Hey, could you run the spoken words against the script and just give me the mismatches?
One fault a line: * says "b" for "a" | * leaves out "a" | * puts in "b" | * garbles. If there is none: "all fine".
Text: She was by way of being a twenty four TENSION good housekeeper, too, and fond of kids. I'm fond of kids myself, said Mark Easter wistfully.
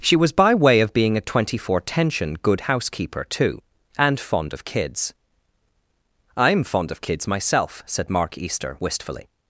all fine